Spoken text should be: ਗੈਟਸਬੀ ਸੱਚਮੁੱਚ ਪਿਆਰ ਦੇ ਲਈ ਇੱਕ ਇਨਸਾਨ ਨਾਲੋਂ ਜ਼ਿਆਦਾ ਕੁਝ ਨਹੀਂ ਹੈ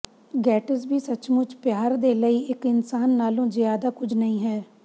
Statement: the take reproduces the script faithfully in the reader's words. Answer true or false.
true